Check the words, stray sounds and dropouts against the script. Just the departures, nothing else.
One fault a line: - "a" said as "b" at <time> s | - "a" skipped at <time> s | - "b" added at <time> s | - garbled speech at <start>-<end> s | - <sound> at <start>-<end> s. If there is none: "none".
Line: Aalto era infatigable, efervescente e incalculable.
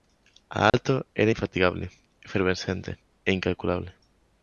- dropout at 0.7-0.7 s